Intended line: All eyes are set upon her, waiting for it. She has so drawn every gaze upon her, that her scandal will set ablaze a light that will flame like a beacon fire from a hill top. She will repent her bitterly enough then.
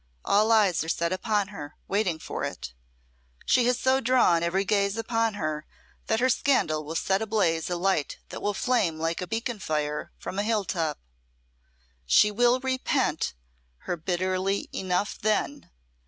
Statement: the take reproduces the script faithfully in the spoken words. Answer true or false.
true